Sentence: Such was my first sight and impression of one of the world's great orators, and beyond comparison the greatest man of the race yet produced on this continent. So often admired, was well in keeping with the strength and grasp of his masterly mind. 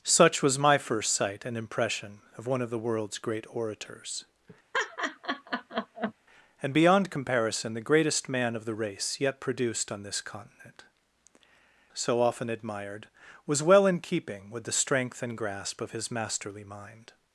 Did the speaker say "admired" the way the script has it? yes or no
yes